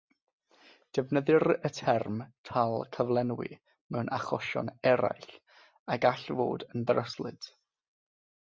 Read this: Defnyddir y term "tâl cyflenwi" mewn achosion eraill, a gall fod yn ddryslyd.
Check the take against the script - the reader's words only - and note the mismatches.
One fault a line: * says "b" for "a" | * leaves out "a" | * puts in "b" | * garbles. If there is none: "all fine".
all fine